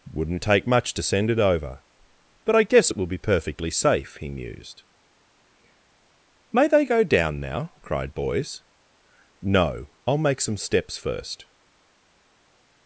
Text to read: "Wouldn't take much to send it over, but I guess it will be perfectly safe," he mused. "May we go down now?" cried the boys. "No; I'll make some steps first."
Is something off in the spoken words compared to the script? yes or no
yes